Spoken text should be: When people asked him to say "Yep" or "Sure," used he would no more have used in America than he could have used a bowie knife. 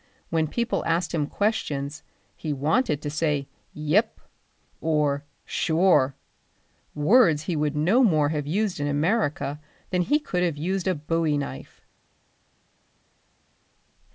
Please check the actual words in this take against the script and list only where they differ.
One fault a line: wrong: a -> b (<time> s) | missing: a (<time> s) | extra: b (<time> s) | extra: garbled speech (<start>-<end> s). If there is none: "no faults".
extra: questions he wanted (1.3 s)
wrong: used -> words (7.0 s)